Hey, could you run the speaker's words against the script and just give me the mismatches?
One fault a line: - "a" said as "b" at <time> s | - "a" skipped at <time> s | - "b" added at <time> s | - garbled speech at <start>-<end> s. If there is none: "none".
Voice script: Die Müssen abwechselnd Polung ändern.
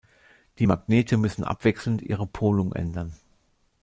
- "Magnete" added at 0.6 s
- "ihre" added at 2.0 s